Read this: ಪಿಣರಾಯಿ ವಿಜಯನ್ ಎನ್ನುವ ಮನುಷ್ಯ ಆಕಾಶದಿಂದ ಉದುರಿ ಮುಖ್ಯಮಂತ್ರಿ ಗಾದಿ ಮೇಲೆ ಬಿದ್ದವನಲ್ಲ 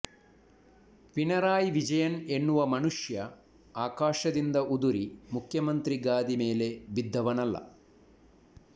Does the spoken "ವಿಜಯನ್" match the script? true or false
true